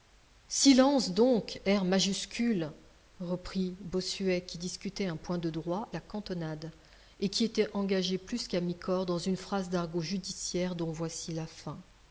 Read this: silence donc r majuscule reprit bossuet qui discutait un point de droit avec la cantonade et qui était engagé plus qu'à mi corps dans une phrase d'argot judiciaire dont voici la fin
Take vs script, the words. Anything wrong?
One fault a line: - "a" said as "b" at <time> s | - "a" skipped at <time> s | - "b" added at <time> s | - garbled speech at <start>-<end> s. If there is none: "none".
- "avec" skipped at 5.9 s